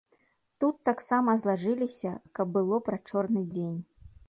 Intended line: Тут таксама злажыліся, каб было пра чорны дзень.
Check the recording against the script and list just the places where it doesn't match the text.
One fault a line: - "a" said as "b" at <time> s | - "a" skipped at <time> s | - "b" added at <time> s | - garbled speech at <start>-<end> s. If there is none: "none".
none